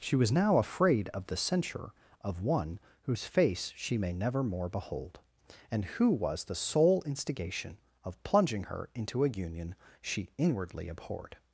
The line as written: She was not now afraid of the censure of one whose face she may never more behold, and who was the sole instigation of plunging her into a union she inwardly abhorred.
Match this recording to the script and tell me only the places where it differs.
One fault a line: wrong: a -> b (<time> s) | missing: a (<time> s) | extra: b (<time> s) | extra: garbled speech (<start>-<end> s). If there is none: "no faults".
missing: not (0.3 s)